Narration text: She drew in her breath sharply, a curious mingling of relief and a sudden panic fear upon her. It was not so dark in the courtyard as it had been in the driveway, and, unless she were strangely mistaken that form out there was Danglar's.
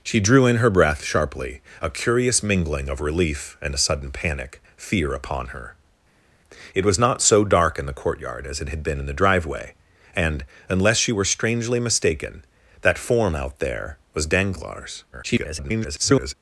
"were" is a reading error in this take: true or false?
false